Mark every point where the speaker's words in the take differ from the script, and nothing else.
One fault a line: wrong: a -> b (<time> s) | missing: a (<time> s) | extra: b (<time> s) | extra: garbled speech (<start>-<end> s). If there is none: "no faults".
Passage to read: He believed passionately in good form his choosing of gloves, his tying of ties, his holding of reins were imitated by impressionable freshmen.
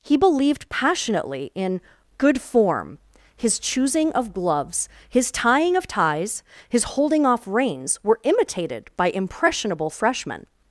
wrong: of -> off (7.2 s)